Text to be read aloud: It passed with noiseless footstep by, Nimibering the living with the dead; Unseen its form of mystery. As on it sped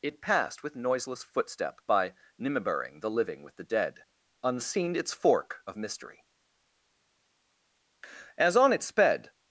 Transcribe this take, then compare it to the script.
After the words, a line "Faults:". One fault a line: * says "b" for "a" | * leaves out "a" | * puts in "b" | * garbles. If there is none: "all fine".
It passed with noiseless footstep by, Nimibering the living with the dead; Unseen its fork of mystery. As on it sped
Faults:
* says "fork" for "form"